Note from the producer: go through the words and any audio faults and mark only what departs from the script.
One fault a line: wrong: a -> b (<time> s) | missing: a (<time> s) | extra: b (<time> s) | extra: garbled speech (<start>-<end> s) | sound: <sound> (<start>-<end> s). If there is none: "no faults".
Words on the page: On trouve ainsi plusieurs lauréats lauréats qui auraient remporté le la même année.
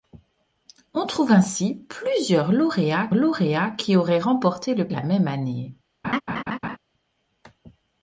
sound: laugh (6.0-6.8 s)